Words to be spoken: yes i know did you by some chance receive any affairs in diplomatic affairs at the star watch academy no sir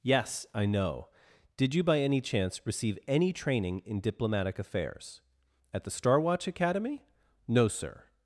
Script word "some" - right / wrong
wrong